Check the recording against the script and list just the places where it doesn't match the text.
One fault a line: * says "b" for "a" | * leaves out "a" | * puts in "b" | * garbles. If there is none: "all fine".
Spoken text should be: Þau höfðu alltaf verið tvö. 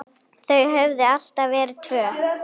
all fine